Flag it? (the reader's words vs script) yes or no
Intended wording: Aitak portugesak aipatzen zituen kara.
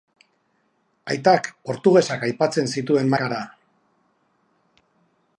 no